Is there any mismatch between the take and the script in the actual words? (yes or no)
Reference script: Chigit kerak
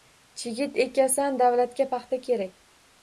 yes